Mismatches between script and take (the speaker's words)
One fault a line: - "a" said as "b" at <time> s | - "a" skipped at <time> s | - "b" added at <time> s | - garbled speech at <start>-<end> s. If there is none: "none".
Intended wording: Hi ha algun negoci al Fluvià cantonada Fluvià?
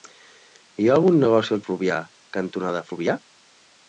none